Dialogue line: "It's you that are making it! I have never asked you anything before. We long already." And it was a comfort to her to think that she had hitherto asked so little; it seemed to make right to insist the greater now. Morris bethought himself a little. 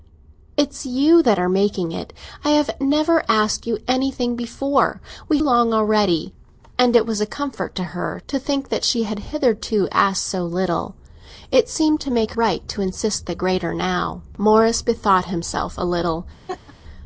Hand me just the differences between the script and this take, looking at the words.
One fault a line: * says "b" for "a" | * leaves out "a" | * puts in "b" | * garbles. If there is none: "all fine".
all fine